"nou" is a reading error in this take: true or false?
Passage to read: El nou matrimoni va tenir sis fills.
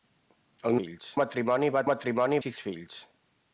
true